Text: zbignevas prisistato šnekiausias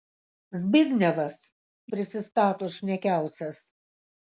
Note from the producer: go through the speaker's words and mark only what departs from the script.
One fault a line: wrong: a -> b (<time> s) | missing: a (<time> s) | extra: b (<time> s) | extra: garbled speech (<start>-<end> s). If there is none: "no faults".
no faults